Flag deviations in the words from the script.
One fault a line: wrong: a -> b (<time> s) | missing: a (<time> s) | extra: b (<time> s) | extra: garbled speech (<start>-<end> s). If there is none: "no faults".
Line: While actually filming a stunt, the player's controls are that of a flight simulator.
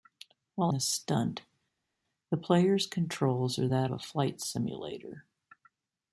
missing: actually filming (0.7 s)
missing: of (3.9 s)